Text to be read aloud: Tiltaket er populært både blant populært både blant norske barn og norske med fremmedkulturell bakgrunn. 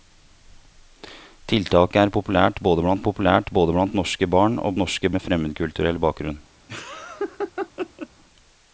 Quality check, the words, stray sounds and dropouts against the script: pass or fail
fail